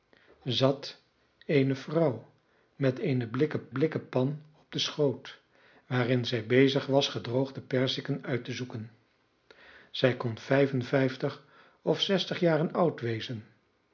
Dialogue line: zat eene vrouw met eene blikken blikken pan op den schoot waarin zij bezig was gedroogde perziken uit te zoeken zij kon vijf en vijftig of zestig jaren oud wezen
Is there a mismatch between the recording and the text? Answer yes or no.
no